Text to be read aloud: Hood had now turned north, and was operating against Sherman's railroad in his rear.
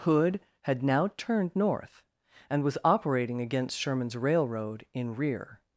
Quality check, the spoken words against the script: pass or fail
fail